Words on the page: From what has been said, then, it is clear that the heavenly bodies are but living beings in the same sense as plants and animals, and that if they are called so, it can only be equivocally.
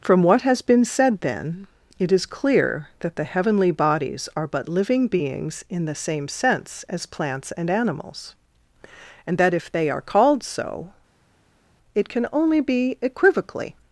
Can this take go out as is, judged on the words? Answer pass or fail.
pass